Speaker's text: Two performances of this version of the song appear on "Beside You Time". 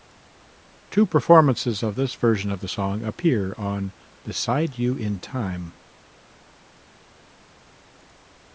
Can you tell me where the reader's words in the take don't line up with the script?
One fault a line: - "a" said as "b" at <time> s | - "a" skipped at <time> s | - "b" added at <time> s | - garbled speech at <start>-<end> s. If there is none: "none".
- "in" added at 5.0 s